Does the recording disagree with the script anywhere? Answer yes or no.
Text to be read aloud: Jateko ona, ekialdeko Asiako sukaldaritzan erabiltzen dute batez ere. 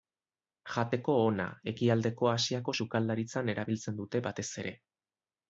no